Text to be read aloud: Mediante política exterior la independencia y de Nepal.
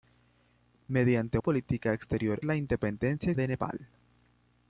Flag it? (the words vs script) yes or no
no